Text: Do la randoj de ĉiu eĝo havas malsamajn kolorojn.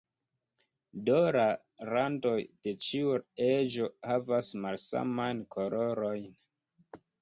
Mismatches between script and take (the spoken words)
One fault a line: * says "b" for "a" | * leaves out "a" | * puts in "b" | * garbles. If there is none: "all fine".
all fine